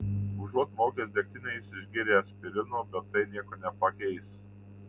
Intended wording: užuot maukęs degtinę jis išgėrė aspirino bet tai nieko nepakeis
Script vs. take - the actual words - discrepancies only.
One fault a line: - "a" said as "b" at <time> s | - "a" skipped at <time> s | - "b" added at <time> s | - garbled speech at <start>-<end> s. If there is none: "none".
none